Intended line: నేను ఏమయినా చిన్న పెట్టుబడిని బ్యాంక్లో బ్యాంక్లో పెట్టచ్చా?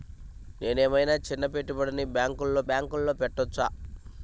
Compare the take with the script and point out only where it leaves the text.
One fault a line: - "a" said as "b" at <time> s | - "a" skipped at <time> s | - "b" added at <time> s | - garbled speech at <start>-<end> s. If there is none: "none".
none